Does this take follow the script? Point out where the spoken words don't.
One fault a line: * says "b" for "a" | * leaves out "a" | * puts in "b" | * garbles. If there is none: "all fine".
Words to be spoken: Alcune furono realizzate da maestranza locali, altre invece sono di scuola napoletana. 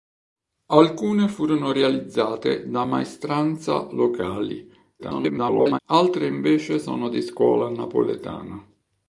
* garbles